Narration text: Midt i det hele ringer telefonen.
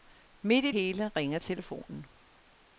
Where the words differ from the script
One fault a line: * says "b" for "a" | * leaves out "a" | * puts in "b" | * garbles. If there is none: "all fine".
* leaves out "det"